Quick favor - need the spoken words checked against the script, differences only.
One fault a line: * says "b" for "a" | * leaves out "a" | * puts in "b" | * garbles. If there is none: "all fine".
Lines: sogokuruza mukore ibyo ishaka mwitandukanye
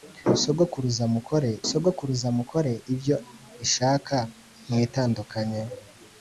* puts in "sogokuruza mukore"